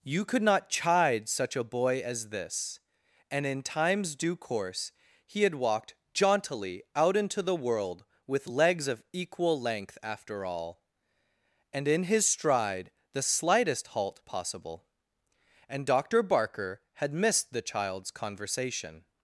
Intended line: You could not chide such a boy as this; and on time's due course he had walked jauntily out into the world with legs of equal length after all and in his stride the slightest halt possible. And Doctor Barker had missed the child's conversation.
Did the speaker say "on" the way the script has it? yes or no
no